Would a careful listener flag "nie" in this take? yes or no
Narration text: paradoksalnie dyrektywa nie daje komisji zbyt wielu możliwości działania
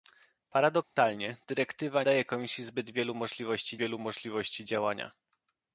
yes